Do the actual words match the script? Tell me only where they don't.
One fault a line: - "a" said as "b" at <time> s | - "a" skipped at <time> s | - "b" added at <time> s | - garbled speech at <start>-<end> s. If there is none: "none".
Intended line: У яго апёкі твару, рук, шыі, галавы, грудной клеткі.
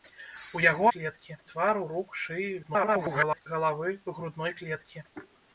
- "апёкі" said as "клеткі" at 0.9 s
- garbled speech at 2.6-3.5 s